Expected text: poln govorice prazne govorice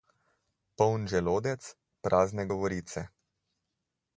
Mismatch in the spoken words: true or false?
true